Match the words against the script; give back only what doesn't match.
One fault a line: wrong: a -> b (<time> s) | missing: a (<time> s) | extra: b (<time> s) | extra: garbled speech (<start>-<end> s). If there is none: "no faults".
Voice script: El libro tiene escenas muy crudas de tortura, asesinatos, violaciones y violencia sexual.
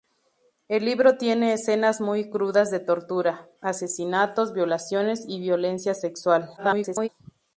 extra: garbled speech (6.6-7.1 s)